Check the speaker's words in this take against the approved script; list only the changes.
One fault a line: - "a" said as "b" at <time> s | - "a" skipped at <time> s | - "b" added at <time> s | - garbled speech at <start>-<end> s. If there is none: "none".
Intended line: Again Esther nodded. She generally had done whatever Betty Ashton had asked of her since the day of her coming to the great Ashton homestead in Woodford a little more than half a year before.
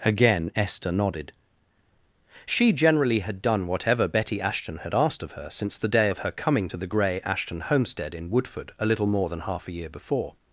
- "great" said as "grey" at 6.9 s